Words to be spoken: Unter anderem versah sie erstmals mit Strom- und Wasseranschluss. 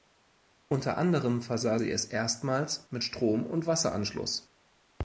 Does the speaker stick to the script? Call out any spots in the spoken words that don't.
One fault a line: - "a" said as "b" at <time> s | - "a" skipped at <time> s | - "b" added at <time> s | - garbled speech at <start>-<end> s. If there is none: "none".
- "es" added at 1.9 s